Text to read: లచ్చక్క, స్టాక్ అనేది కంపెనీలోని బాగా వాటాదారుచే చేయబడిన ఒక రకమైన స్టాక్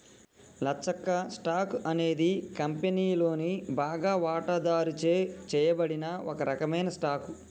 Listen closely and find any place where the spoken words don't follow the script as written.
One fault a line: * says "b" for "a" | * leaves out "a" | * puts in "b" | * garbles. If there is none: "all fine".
all fine